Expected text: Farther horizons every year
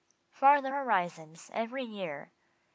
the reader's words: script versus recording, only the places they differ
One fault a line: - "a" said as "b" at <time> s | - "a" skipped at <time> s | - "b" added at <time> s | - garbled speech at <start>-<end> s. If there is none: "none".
none